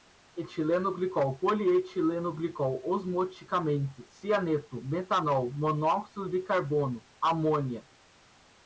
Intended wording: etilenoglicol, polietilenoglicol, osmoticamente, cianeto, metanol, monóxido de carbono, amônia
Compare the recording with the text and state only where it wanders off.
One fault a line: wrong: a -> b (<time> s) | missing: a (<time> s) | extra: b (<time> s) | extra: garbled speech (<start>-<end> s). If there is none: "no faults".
no faults